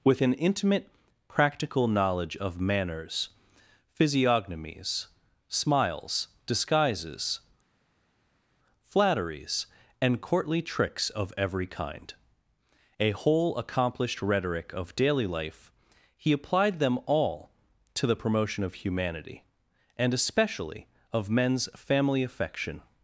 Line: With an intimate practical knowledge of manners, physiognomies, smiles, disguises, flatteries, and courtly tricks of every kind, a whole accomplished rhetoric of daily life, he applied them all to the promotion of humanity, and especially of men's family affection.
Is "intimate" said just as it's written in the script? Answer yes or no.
yes